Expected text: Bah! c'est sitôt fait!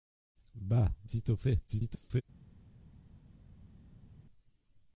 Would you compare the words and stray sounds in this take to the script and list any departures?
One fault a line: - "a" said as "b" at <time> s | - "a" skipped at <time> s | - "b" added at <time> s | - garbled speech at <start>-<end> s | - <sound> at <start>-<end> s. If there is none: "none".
- "c'est" skipped at 0.9 s
- garbled speech at 1.7-2.2 s